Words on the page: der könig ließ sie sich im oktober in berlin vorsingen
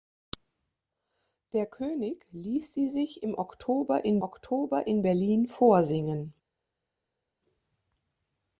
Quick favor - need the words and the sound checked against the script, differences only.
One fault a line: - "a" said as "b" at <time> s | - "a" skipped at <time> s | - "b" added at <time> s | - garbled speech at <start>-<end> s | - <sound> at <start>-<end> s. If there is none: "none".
- "oktober in" added at 4.2 s